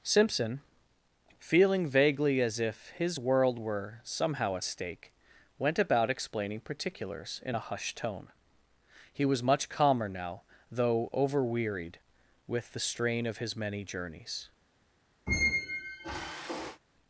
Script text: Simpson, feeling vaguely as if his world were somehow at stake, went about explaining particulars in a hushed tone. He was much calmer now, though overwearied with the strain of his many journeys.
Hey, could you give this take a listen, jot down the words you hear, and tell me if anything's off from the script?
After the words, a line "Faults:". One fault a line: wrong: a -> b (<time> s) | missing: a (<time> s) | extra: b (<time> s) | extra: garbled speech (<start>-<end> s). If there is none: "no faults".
Simpson, feeling vaguely as if his world were somehow at stake, went about explaining particulars in a hushed tone. He was much calmer now, though overwearied with the strain of his many journeys.
Faults:
no faults